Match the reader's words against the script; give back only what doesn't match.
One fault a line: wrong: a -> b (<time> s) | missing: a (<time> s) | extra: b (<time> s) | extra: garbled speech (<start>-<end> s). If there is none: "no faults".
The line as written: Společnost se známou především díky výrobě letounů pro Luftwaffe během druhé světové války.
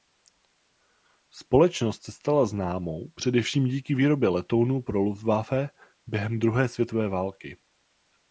extra: stala (2.1 s)